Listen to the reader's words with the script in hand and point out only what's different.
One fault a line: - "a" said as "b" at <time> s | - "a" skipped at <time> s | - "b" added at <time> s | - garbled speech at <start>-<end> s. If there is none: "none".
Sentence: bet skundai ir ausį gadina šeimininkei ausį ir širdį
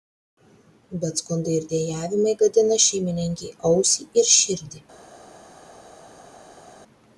- "ausį" said as "dejavimai" at 1.7 s